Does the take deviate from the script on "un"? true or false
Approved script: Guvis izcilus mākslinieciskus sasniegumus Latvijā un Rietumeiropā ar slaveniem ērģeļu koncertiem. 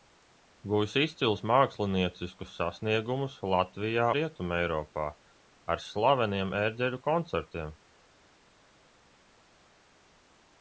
true